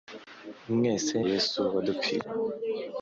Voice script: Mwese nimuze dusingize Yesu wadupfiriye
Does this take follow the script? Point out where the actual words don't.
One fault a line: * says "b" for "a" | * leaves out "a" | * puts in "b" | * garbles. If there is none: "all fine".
* leaves out "nimuze dusingize"